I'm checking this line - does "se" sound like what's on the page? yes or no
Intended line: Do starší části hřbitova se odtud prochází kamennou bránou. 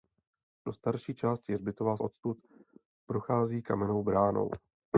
no